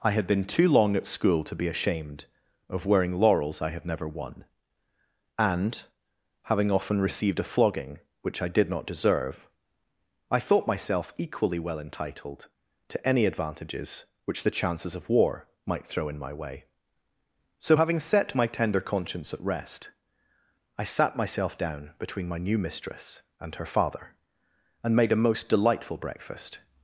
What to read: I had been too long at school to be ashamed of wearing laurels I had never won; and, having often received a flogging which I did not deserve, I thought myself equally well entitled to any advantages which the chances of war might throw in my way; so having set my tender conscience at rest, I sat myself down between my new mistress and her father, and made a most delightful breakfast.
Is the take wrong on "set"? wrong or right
right